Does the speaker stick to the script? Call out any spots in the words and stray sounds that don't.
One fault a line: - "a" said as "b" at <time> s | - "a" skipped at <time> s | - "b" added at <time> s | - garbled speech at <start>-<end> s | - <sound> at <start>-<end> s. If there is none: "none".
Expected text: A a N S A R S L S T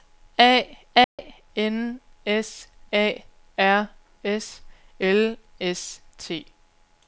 - dropout at 1.0-1.2 s